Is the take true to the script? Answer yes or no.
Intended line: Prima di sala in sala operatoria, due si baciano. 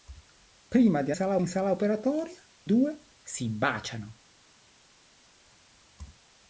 yes